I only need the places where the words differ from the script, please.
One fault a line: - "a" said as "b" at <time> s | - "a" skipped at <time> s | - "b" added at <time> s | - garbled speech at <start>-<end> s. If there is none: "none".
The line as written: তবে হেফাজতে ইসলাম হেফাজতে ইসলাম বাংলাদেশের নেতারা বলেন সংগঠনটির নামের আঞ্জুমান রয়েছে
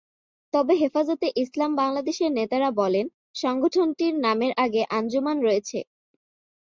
- "হেফাজতে ইসলাম" skipped at 1.7 s
- "আগে" added at 4.6 s